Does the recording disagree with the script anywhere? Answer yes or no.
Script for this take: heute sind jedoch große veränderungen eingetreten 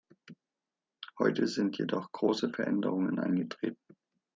no